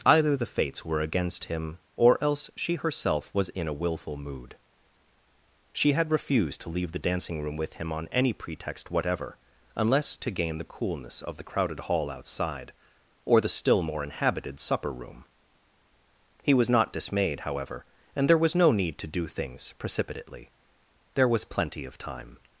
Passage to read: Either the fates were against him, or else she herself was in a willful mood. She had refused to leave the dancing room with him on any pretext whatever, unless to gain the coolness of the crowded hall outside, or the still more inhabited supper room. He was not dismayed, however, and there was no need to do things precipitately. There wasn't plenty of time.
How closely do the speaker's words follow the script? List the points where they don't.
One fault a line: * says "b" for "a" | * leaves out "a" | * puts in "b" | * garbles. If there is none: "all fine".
* says "was" for "wasn't"